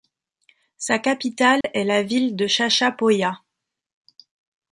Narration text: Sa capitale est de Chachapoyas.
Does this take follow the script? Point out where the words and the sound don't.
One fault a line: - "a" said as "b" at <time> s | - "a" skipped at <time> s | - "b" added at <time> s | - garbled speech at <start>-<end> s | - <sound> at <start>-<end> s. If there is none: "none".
- dropout at 1.6-1.6 s
- "la ville" added at 1.8 s